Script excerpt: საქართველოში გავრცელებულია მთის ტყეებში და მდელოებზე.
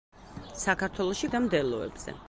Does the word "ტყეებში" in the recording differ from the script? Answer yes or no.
yes